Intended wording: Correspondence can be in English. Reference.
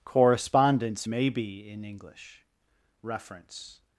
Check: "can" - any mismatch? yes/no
yes